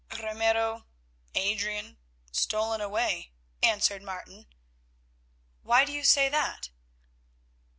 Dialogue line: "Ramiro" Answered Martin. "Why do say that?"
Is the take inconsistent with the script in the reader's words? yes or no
yes